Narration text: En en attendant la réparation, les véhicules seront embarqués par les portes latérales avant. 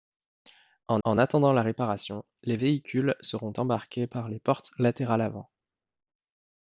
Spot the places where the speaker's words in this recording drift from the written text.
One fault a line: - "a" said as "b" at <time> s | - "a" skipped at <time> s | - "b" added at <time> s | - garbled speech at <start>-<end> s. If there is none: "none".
none